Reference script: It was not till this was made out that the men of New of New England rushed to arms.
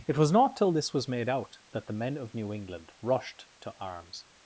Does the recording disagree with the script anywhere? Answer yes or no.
yes